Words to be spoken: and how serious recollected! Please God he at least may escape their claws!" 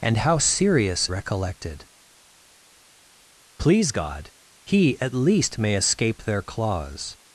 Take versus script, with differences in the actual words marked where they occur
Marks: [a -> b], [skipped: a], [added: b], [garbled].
and how serious recollected! Please God he at least may escape their claws!"